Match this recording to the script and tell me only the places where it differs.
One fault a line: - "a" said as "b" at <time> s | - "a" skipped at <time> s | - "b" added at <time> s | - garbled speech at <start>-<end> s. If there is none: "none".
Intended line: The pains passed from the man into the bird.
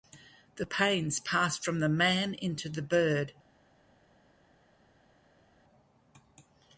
none